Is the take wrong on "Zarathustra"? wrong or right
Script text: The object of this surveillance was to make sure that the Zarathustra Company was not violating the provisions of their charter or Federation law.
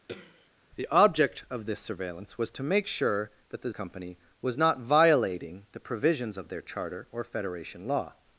wrong